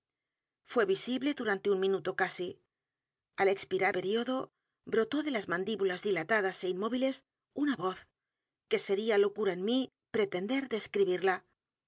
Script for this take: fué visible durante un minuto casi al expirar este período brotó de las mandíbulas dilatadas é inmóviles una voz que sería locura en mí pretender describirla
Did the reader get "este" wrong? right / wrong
wrong